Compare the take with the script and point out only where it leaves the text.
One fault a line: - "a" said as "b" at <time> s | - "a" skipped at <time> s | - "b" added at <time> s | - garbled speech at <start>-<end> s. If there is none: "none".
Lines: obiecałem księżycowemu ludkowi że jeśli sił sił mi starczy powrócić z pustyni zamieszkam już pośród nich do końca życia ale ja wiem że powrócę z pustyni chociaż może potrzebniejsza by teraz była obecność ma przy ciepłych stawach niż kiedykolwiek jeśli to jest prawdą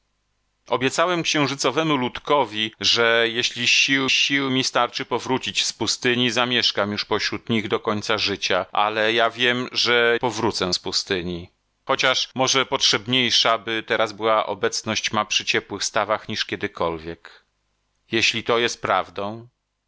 none